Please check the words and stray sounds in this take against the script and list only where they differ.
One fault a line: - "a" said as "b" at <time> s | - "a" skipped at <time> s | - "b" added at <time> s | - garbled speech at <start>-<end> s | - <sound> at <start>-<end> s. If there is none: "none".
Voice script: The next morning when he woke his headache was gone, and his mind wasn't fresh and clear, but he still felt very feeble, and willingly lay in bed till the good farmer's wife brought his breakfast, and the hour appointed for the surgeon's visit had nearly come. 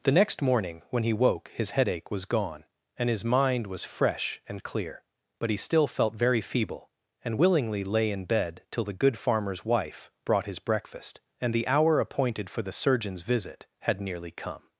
- "wasn't" said as "was" at 3.7 s